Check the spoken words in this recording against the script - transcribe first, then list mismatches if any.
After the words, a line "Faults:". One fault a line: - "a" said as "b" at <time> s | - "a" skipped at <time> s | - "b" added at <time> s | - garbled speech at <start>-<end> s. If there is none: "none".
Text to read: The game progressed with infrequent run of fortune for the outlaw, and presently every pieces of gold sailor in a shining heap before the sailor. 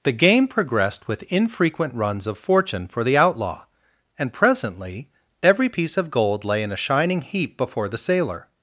The game progressed with infrequent runs of fortune for the outlaw, and presently every piece of gold lay in a shining heap before the sailor.
Faults:
- "run" said as "runs" at 1.9 s
- "pieces" said as "piece" at 5.7 s
- "sailor" said as "lay" at 6.4 s